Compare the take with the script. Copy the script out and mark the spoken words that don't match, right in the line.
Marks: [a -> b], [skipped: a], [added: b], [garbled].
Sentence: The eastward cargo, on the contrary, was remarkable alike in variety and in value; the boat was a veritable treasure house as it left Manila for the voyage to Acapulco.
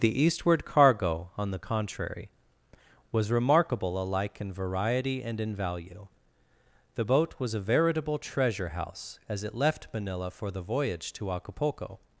The eastward cargo, on the contrary, was remarkable alike in variety and in value; the boat was a veritable treasure house as it left Manila for the voyage to Acapulco.